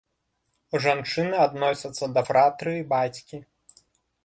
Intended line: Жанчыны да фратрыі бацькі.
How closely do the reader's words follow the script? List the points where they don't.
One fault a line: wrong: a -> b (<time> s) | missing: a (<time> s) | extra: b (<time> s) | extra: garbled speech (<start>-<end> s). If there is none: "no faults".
extra: адносяцца (1.5 s)